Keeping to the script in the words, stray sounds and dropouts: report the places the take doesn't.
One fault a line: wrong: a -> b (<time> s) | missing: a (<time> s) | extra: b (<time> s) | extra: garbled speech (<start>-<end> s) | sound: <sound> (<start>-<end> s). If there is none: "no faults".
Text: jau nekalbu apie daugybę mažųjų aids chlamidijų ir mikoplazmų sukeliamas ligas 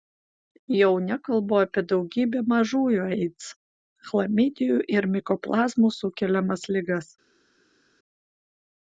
no faults